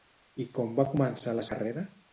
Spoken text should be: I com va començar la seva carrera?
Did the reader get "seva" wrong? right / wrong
wrong